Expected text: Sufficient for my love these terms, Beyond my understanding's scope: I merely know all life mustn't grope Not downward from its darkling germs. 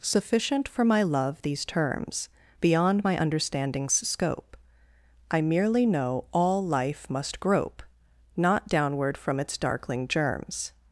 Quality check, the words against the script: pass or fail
fail